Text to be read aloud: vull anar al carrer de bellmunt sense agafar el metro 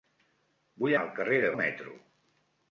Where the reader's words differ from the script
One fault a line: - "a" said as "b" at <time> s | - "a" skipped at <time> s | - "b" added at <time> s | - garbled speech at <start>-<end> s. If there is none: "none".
- "anar" skipped at 0.9 s
- "bellmunt sense agafar" skipped at 1.5 s